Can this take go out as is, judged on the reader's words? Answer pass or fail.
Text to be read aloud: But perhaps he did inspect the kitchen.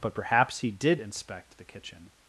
pass